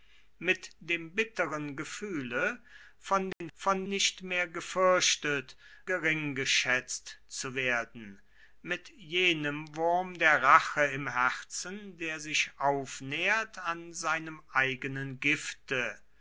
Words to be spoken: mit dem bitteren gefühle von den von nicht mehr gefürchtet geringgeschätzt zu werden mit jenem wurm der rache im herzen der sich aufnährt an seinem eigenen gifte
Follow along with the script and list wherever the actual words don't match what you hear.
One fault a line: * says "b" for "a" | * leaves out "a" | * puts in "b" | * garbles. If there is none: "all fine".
all fine